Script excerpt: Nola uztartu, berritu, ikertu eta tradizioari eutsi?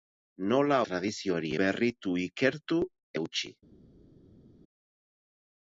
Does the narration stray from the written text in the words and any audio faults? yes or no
yes